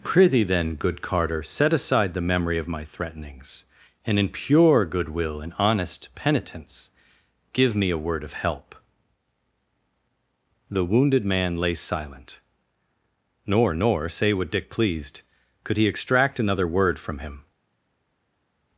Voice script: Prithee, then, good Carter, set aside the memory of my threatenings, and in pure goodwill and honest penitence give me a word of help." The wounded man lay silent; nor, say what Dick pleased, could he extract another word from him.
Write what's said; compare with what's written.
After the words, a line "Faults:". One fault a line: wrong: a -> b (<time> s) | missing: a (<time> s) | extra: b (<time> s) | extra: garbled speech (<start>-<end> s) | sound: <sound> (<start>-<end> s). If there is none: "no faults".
Prithee, then, good Carter, set aside the memory of my threatenings, and in pure goodwill and honest penitence give me a word of help." The wounded man lay silent; nor nor, say what Dick pleased, could he extract another word from him.
Faults:
extra: nor (13.8 s)